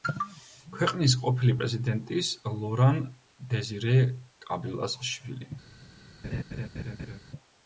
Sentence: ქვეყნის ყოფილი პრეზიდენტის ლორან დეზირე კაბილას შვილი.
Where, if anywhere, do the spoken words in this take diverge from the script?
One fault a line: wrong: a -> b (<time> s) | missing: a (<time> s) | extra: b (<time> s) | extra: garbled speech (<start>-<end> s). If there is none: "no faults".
no faults